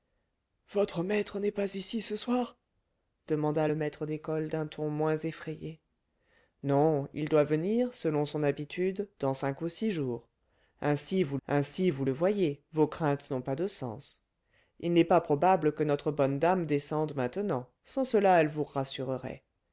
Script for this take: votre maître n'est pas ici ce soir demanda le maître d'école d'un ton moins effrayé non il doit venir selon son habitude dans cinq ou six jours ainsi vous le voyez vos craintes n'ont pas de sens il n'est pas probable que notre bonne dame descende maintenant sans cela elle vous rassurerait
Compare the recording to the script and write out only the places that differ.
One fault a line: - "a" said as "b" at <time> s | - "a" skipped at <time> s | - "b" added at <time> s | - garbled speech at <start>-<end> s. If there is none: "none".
- "ainsi vous" added at 11.5 s